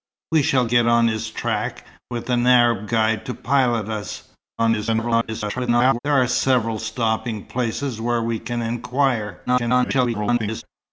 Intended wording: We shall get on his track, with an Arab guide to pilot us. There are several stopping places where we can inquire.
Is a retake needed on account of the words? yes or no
yes